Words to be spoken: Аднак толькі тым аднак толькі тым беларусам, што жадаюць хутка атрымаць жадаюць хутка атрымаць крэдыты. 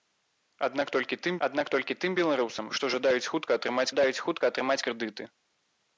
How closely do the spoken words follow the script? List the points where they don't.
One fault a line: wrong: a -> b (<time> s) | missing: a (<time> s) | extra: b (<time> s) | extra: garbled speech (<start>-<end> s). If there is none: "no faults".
no faults